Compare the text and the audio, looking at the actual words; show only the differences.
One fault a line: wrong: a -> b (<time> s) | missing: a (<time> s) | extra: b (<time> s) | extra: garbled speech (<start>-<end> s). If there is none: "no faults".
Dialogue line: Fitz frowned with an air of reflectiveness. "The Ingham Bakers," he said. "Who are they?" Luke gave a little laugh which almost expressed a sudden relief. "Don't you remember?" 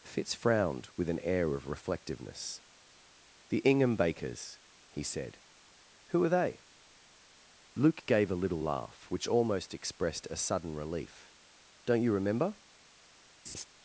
no faults